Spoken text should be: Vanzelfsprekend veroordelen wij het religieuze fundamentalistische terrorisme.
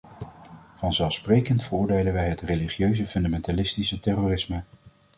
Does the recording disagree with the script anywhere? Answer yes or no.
no